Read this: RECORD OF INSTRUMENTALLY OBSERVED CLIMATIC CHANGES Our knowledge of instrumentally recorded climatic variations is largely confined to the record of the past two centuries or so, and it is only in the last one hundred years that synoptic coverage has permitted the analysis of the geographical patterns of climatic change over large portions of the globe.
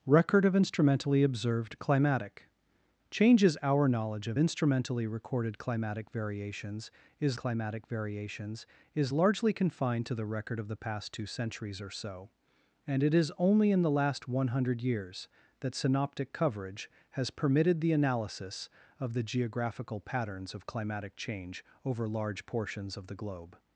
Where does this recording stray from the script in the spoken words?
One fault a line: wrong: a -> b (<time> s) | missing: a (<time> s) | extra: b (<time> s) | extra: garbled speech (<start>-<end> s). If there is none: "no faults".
extra: climatic variations is (7.4 s)